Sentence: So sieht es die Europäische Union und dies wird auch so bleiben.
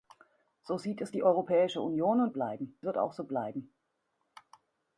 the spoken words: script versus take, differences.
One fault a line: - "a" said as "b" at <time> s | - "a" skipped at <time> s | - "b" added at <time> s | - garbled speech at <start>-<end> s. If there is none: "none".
- "dies" said as "bleiben" at 2.3 s